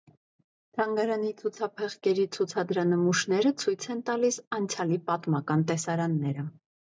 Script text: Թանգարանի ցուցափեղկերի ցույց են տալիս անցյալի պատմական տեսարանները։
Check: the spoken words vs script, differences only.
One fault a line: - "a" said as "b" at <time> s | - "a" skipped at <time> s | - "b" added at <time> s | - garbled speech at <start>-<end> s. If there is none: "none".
- "ցուցադրանմուշները" added at 2.4 s